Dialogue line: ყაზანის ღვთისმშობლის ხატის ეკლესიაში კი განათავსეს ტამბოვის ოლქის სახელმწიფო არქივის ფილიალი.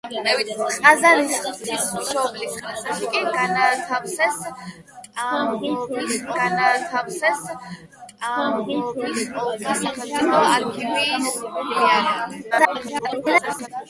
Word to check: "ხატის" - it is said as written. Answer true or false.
false